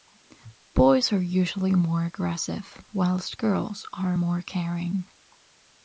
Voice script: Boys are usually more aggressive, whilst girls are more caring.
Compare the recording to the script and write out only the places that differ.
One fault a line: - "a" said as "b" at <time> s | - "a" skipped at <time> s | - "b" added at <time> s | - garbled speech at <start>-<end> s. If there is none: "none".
none